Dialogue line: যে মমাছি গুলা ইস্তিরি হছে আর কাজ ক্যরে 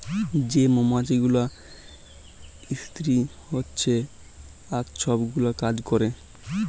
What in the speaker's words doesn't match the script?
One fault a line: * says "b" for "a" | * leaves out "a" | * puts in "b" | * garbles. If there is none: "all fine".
* puts in "ছব গুলা"